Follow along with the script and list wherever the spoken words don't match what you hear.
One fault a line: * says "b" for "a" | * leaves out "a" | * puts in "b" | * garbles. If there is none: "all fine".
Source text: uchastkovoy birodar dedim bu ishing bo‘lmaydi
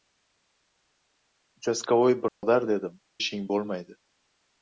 * leaves out "bu"